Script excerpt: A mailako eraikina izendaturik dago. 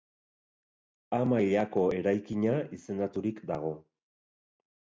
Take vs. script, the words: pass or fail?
pass